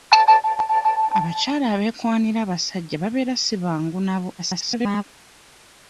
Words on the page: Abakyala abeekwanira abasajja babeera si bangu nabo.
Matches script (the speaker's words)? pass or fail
fail